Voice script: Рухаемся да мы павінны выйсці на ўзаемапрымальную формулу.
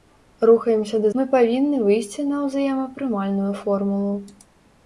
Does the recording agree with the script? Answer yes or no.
yes